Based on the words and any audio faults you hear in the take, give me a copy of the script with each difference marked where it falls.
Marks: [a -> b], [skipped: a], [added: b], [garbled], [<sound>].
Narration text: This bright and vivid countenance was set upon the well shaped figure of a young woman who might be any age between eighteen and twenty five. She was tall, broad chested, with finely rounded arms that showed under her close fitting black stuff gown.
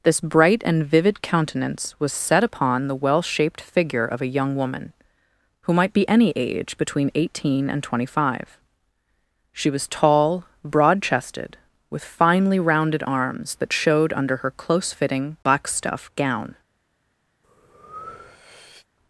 This bright and vivid countenance was set upon the well shaped figure of a young woman who might be any age between eighteen and twenty five. She was tall, broad chested, with finely rounded arms that showed under her close fitting black stuff gown. [breath]